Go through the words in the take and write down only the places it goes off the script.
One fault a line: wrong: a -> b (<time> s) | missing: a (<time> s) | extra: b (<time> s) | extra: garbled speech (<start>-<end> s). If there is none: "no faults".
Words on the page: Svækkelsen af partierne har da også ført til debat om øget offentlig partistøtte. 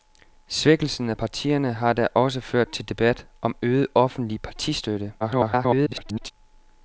extra: garbled speech (5.2-6.3 s)